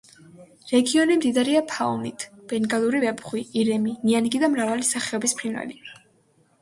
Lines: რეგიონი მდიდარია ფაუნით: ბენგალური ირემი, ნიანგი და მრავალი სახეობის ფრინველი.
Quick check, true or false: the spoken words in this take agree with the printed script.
false